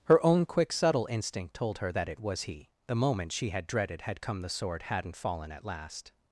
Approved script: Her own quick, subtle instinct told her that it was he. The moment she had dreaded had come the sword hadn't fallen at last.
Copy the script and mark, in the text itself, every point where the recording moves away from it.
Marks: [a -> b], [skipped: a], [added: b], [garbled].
Her own quick, subtle instinct told her that it was he. The moment she had dreaded had come the sword hadn't fallen at last.